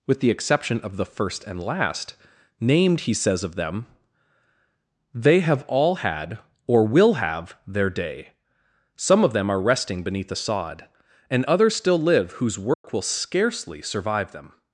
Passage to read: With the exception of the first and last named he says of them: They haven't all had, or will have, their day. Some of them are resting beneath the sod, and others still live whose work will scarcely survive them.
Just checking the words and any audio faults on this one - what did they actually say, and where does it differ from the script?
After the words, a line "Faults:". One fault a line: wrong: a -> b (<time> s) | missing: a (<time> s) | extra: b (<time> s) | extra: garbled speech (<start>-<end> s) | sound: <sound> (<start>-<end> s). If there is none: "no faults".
With the exception of the first and last named he says of them: They have all had, or will have, their day. Some of them are resting beneath the sod, and others still live whose work will scarcely survive them.
Faults:
wrong: haven't -> have (5.4 s)
sound: dropout (12.7-12.8 s)